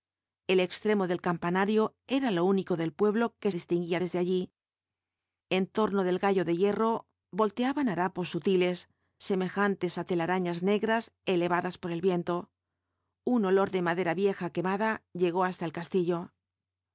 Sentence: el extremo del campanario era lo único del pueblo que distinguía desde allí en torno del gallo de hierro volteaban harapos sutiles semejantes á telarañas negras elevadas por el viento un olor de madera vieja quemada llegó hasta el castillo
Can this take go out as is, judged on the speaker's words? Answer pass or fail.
pass